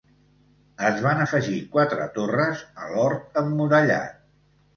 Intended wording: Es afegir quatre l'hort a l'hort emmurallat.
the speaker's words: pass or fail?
fail